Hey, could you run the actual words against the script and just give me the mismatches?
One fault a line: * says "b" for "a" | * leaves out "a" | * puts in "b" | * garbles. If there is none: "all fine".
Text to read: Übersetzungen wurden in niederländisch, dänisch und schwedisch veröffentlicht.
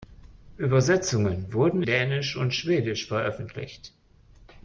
* leaves out "in niederländisch"